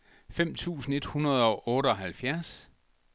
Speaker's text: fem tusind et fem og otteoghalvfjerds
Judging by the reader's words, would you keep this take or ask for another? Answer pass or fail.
fail